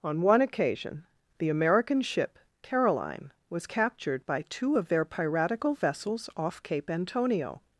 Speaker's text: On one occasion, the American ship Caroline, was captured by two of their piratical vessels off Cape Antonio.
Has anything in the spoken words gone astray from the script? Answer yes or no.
no